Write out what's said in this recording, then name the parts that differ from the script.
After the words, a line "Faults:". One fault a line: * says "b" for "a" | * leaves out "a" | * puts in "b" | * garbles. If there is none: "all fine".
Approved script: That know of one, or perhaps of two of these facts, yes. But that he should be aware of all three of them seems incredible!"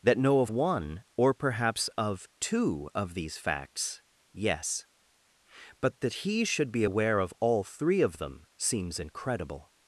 That know of one, or perhaps of two of these facts, yes. But that he should be aware of all three of them seems incredible!"
Faults:
all fine